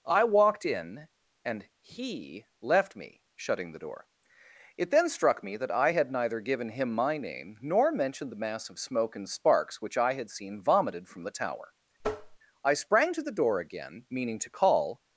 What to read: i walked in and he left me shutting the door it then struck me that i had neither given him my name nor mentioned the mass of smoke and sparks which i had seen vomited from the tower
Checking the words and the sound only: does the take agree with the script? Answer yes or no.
no